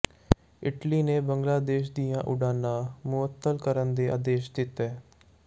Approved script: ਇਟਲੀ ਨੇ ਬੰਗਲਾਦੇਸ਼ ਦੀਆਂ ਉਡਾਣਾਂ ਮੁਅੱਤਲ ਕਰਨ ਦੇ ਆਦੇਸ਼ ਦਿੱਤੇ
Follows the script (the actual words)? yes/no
yes